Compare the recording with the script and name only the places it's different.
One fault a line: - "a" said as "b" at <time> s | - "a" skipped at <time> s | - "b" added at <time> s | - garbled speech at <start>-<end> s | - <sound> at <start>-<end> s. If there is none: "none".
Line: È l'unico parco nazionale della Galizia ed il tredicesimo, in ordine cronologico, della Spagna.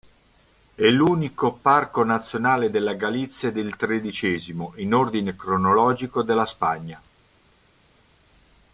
none